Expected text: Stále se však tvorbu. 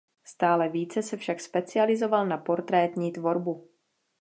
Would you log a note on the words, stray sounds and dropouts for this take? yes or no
yes